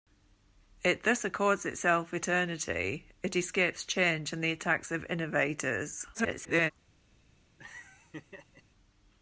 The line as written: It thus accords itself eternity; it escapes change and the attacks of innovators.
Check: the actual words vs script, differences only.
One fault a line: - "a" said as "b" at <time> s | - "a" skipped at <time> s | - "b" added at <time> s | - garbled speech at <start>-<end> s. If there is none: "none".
- garbled speech at 6.1-6.7 s